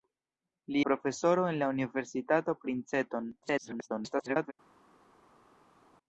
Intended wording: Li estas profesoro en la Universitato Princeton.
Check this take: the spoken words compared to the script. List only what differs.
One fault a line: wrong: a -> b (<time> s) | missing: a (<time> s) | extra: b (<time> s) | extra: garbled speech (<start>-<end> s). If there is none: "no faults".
missing: estas (0.8 s)
extra: garbled speech (3.4-4.5 s)